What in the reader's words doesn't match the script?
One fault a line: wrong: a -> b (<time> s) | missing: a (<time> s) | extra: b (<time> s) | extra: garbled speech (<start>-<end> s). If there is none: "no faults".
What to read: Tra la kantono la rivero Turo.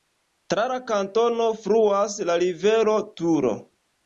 extra: fluas (1.7 s)